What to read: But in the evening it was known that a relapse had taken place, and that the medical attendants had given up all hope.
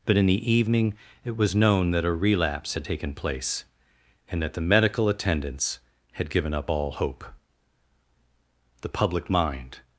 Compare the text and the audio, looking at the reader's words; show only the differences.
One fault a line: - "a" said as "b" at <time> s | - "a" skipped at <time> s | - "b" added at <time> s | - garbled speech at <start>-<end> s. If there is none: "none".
- "The public mind" added at 8.8 s